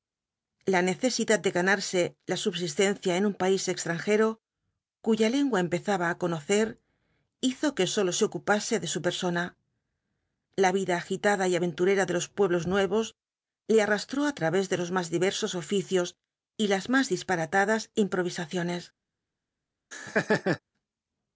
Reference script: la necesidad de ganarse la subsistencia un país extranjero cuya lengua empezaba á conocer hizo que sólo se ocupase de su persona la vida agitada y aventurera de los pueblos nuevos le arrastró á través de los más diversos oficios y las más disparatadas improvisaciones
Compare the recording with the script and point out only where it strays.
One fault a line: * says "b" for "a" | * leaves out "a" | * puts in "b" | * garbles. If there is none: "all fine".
* puts in "en"